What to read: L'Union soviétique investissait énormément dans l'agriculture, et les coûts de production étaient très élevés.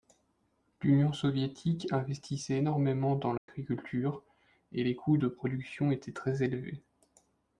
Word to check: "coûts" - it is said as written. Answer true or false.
true